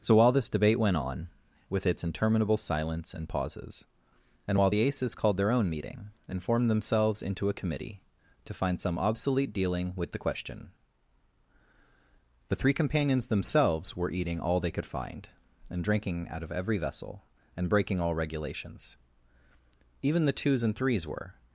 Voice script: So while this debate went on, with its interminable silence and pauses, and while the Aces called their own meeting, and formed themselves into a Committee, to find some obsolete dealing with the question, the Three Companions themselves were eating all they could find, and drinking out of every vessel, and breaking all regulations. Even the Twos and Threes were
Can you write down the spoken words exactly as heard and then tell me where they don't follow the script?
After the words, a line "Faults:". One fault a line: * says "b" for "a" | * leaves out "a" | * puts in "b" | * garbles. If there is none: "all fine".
So while this debate went on, with its interminable silence and pauses, and while the Aces called their own meeting, and formed themselves into a Committee, to find some obsolete dealing with the question, the Three Companions themselves were eating all they could find, and drinking out of every vessel, and breaking all regulations. Even the Twos and Threes were
Faults:
all fine